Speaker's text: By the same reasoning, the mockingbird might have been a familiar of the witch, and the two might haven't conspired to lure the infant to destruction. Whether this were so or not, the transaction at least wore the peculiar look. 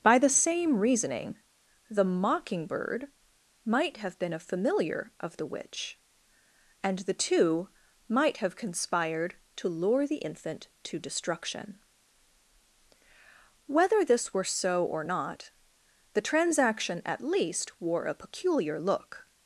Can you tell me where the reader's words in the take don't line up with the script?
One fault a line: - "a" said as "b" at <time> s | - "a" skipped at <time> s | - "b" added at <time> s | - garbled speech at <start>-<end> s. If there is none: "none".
- "haven't" said as "have" at 8.4 s
- "the" said as "a" at 18.0 s